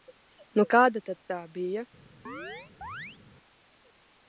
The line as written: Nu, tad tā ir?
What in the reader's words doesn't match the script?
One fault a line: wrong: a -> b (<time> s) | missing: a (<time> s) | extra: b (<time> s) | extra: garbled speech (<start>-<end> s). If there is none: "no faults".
extra: kāda (0.8 s)
wrong: ir -> bija (1.6 s)